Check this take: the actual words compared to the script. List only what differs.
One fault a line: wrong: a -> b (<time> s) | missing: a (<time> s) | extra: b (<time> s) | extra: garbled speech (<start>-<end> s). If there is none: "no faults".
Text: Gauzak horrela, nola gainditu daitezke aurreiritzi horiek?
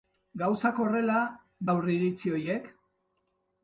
missing: nola gainditu daitezke (1.2 s)